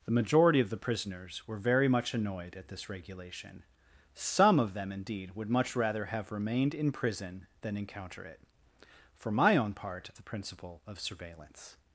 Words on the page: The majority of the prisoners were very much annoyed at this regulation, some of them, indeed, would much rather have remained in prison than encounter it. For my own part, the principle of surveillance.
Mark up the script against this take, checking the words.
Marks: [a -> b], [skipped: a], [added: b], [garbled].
The majority of the prisoners were very much annoyed at this regulation, some of them, indeed, would much rather have remained in prison than encounter it. For my own part, the principle of surveillance.